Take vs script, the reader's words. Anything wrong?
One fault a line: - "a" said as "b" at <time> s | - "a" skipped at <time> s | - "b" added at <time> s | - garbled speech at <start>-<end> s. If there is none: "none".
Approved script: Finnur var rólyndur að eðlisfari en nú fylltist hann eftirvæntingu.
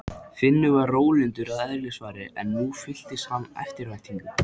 none